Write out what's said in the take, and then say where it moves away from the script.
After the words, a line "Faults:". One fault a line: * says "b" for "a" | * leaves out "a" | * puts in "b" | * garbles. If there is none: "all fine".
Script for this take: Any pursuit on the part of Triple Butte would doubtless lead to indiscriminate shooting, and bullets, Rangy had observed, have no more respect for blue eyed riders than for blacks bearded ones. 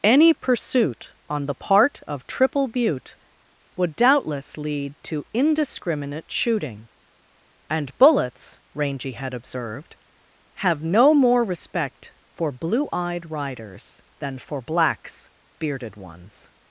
Any pursuit on the part of Triple Butte would doubtless lead to indiscriminate shooting, and bullets, Rangy had observed, have no more respect for blue eyed riders than for blacks bearded ones.
Faults:
all fine